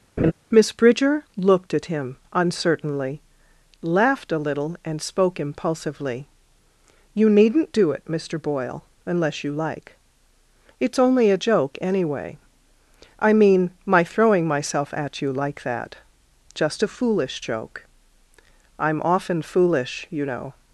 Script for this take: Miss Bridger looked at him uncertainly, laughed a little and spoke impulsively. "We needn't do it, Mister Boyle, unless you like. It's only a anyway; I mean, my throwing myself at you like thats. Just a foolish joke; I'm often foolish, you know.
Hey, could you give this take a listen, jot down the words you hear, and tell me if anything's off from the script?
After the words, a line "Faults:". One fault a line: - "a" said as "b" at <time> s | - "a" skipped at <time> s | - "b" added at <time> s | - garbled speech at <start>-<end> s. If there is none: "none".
Miss Bridger looked at him uncertainly, laughed a little and spoke impulsively. "You needn't do it, Mister Boyle, unless you like. It's only a joke, anyway; I mean, my throwing myself at you like that. Just a foolish joke; I'm often foolish, you know.
Faults:
- "We" said as "You" at 7.1 s
- "joke" added at 11.4 s
- "thats" said as "that" at 15.6 s